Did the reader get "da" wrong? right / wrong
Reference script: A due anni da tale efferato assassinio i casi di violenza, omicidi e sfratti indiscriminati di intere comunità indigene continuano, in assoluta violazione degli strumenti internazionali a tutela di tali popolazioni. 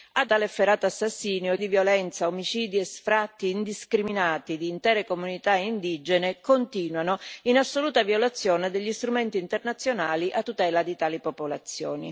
wrong